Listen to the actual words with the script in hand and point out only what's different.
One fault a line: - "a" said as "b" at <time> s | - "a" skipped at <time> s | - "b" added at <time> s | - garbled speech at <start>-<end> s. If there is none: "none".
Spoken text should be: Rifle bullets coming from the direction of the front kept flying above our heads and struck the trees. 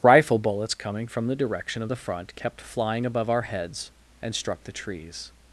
none